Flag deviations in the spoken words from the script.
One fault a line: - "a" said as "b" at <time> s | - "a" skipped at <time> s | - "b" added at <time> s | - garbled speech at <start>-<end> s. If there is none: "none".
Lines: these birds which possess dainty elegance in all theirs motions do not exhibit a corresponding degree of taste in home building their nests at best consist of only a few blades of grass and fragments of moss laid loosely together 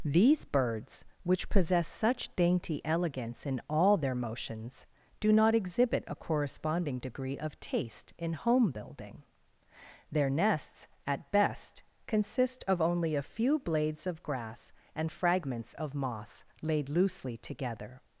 - "such" added at 1.9 s
- "theirs" said as "their" at 4.0 s